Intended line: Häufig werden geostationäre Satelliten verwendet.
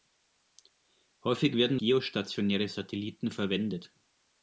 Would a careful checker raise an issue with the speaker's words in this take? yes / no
no